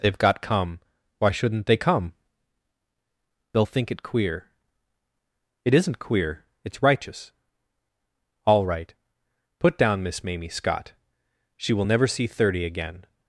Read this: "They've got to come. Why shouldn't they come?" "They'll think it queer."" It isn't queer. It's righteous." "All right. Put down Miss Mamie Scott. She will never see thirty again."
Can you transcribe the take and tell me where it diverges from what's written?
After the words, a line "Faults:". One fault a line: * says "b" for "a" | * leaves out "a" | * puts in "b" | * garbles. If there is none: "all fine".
"They've got come. Why shouldn't they come?" "They'll think it queer."" It isn't queer. It's righteous." "All right. Put down Miss Mamie Scott. She will never see thirty again."
Faults:
* leaves out "to"